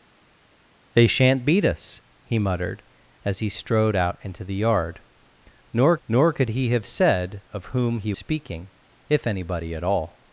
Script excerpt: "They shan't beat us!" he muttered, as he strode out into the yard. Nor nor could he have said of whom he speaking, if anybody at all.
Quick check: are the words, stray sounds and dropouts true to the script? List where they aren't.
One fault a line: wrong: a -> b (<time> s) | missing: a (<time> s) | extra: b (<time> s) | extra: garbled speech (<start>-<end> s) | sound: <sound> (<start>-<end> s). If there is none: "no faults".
no faults